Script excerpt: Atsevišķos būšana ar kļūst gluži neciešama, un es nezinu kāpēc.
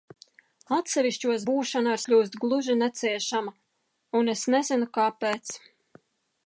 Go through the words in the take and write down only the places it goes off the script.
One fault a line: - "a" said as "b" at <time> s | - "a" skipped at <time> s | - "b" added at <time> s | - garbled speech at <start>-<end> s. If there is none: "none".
none